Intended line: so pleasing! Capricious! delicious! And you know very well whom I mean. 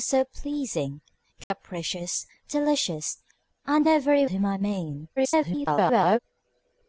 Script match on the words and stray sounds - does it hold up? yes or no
no